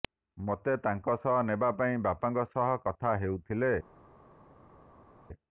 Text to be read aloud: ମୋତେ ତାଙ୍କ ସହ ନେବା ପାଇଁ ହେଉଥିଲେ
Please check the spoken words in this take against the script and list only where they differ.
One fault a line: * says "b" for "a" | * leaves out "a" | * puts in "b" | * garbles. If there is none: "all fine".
* puts in "ବାପାଙ୍କ ସହ କଥା"